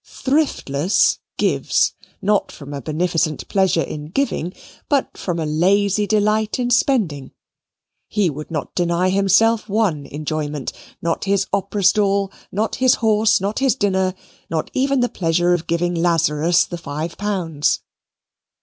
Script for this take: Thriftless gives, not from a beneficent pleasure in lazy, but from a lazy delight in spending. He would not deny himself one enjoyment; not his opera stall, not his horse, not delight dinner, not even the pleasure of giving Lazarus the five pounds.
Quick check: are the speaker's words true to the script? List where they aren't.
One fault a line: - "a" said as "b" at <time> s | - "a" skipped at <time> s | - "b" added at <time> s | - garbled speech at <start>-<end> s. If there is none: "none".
- "lazy" said as "giving" at 4.1 s
- "delight" said as "his" at 13.6 s